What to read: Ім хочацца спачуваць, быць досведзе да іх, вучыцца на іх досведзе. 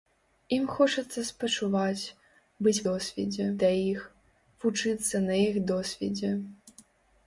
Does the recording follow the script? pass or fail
pass